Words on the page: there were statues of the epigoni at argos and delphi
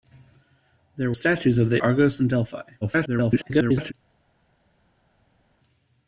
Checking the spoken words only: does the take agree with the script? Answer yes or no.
no